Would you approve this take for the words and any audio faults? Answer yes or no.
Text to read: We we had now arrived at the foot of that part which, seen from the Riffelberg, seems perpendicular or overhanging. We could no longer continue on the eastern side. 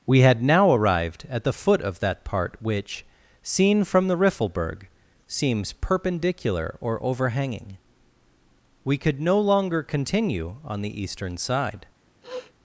no